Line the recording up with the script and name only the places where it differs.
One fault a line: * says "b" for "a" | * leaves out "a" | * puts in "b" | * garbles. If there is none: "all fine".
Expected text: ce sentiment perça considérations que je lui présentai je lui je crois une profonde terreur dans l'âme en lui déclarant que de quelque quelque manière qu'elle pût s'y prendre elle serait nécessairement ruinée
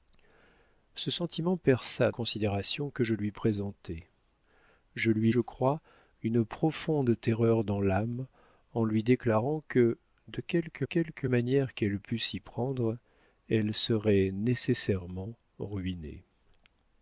all fine